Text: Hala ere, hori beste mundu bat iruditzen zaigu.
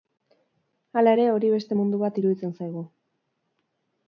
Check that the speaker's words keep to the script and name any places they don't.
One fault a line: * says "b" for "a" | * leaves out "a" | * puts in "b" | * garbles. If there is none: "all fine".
all fine